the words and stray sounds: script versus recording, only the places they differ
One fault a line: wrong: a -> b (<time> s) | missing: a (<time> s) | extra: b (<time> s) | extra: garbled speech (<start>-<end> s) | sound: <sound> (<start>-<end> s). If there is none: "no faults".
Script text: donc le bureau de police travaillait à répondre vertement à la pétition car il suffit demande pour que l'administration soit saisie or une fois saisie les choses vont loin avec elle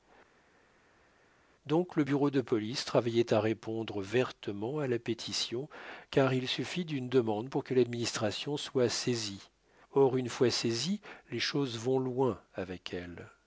extra: d'une (6.8 s)